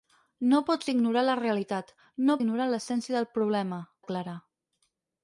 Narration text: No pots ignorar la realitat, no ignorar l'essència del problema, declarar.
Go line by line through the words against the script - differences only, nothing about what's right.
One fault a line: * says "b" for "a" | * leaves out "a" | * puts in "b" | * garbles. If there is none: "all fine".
all fine